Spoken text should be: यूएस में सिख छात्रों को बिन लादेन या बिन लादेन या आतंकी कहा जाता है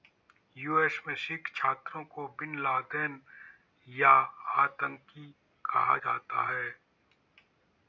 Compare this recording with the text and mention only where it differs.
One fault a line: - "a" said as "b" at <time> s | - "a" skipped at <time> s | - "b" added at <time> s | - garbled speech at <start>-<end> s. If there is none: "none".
- "बिन लादेन या" skipped at 4.1 s